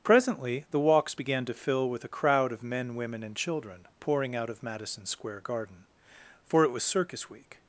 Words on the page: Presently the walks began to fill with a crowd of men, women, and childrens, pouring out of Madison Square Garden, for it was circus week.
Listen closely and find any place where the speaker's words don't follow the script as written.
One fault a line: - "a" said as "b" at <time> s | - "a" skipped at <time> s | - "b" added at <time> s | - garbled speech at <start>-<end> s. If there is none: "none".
- "childrens" said as "children" at 3.4 s